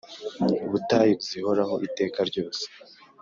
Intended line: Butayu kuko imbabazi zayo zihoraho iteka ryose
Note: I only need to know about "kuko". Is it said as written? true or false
false